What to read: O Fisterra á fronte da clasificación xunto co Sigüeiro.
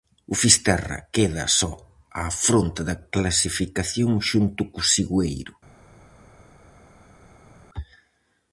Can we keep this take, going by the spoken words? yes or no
no